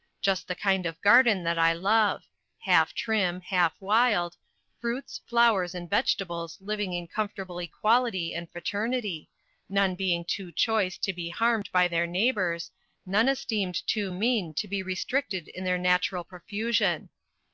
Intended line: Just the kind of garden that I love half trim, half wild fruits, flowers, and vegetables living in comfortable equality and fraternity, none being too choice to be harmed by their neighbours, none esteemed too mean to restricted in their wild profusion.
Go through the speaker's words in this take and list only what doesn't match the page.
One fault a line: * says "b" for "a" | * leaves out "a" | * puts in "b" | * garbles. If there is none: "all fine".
* puts in "be"
* says "natural" for "wild"